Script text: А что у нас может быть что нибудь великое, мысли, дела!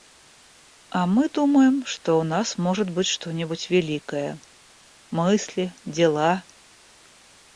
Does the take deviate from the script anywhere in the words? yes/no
yes